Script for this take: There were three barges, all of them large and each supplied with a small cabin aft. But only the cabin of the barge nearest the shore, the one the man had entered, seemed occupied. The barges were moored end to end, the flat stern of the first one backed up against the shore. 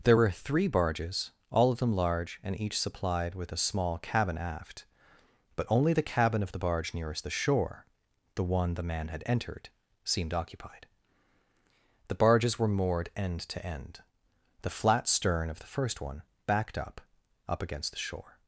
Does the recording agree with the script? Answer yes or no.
no